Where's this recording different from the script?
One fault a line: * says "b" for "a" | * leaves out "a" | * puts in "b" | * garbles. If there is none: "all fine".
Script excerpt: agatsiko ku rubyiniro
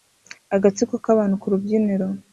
* puts in "k'abantu"